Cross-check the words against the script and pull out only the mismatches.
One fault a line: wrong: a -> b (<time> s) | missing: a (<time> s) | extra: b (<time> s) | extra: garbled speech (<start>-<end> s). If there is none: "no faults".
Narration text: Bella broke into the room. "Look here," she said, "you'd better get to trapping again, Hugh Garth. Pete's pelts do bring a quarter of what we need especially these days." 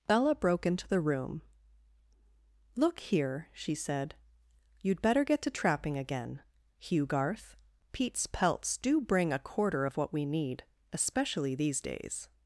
no faults